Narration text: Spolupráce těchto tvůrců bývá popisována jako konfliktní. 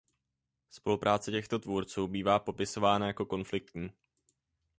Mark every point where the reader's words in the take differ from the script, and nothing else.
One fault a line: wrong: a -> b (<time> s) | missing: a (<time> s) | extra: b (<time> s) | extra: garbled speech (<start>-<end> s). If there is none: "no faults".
no faults